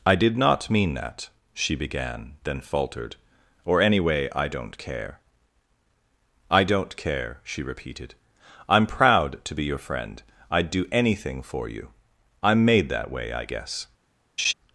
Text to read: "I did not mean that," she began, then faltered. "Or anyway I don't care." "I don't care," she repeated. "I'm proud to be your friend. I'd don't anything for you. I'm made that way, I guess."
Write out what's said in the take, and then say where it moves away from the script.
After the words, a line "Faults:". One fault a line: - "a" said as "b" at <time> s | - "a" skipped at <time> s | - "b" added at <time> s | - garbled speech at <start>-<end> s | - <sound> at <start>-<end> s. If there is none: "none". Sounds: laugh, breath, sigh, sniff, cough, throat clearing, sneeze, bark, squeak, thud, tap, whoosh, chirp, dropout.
"I did not mean that," she began, then faltered. "Or anyway I don't care." "I don't care," she repeated. "I'm proud to be your friend. I'd do anything for you. I'm made that way, I guess."
Faults:
- "don't" said as "do" at 10.7 s
- laugh at 14.4-14.5 s